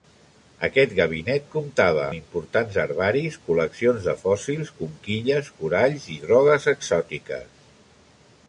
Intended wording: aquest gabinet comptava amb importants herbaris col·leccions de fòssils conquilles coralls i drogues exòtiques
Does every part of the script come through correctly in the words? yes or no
no